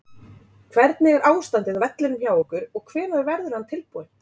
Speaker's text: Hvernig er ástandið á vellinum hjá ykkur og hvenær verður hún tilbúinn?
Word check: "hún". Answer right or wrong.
wrong